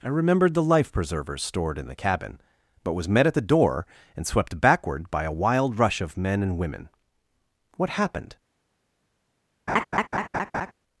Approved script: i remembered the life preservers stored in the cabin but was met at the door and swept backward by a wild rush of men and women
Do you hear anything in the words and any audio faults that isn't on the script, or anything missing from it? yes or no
yes